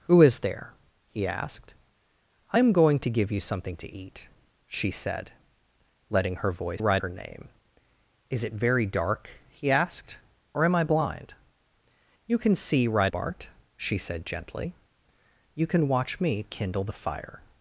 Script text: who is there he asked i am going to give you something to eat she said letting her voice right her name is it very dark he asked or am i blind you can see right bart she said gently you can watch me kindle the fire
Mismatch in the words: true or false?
false